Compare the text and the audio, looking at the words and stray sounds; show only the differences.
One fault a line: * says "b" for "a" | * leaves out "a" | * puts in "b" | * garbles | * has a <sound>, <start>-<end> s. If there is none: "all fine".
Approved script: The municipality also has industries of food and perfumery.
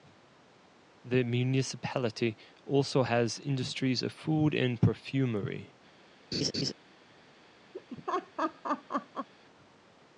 * has a laugh, 6.3-6.7 s
* has a laugh, 7.7-9.3 s